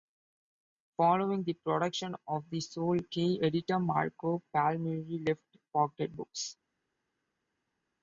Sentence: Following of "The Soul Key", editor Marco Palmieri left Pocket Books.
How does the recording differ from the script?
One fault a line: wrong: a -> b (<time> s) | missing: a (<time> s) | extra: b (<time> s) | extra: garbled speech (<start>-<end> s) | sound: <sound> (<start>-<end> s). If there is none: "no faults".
extra: the production (1.4 s)